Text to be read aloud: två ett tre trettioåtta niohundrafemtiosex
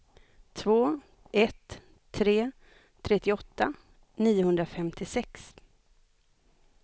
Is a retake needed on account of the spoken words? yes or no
no